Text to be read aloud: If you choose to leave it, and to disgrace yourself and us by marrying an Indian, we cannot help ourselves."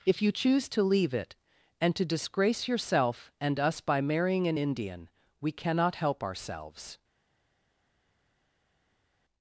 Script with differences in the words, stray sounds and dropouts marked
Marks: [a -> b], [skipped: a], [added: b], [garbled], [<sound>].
If you choose to leave it, and to disgrace yourself and us by marrying an Indian, we cannot help ourselves."